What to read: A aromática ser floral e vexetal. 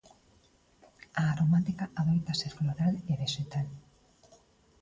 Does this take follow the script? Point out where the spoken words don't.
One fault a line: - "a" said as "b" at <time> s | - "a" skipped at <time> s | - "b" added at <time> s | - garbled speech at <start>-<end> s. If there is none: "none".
- "adoita" added at 2.0 s